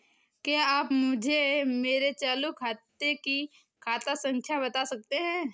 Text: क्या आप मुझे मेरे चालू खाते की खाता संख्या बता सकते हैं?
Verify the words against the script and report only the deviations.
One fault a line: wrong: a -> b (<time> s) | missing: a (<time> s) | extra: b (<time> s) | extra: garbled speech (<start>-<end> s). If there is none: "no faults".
no faults